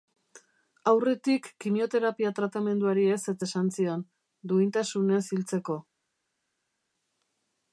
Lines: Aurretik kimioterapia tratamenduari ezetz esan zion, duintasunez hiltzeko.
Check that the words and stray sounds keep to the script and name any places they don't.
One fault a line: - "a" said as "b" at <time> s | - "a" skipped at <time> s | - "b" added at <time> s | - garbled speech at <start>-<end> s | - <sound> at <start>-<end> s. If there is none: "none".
none